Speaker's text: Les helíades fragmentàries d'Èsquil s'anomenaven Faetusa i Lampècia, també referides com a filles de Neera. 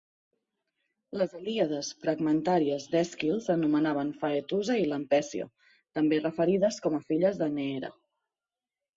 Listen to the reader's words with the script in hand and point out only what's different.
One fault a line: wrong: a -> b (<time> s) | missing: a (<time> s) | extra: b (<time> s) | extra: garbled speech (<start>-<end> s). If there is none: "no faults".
no faults